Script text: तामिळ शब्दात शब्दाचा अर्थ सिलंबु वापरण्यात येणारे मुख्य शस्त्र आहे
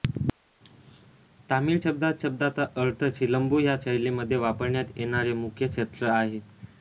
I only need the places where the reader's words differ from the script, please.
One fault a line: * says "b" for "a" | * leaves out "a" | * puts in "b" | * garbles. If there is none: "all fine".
* puts in "ह्या शैलीमध्ये"